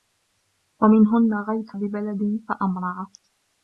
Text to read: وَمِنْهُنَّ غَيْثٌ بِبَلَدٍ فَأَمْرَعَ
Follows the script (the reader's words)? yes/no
yes